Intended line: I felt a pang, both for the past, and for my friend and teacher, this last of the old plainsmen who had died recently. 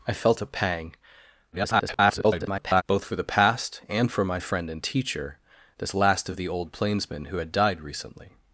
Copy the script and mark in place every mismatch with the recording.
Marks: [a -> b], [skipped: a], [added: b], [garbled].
I felt a pang, [garbled] both for the past, and for my friend and teacher, this last of the old plainsmen who had died recently.